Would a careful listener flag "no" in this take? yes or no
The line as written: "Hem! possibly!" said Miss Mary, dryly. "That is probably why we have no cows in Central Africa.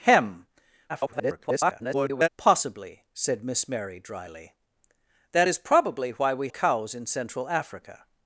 yes